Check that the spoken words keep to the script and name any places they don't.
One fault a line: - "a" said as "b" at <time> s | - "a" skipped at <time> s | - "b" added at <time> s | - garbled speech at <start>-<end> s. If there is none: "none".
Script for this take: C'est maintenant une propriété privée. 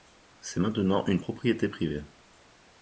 none